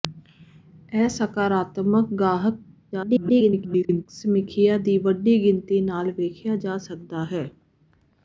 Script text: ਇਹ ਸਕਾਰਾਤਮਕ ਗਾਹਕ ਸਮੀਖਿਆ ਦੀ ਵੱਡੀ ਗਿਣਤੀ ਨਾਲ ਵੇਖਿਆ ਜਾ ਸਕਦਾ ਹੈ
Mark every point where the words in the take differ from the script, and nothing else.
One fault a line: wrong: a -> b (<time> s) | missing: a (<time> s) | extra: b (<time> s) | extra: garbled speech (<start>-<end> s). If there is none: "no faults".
extra: garbled speech (2.9-4.1 s)